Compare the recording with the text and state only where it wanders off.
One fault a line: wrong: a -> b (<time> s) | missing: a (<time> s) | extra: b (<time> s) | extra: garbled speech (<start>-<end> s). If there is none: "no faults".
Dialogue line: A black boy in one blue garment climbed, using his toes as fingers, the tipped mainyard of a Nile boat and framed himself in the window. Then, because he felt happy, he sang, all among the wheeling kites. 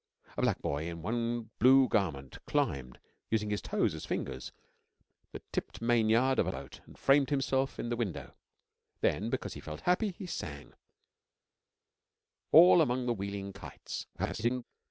missing: Nile (6.5 s)
extra: garbled speech (14.1-14.6 s)